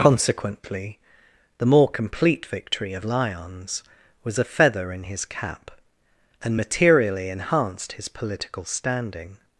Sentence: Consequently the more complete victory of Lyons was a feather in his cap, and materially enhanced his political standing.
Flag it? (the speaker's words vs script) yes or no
no